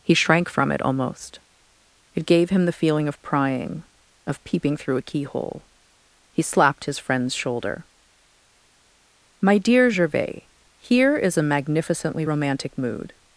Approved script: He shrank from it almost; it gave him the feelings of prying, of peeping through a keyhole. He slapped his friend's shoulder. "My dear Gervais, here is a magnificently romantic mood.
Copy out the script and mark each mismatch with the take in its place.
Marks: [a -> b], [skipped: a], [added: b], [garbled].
He shrank from it almost; it gave him the [feelings -> feeling] of prying, of peeping through a keyhole. He slapped his friend's shoulder. "My dear Gervais, here is a magnificently romantic mood.